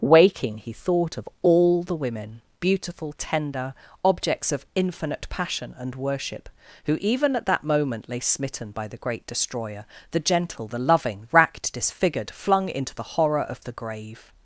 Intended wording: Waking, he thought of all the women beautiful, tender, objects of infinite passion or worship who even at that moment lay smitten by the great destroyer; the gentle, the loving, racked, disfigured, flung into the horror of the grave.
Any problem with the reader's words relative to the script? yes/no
yes